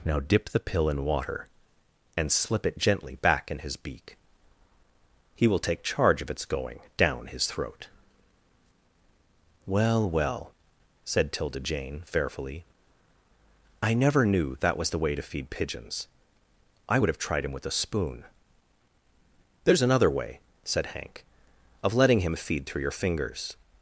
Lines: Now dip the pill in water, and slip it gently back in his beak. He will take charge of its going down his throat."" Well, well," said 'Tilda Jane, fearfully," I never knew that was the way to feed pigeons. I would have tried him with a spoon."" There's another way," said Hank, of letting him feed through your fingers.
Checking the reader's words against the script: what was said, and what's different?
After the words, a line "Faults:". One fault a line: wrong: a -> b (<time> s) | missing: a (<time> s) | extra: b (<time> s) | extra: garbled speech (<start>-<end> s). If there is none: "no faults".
Now dip the pill in water, and slip it gently back in his beak. He will take charge of its going down his throat."" Well, well," said 'Tilda Jane, fearfully," I never knew that was the way to feed pigeons. I would have tried him with a spoon."" There's another way," said Hank, of letting him feed through your fingers.
Faults:
no faults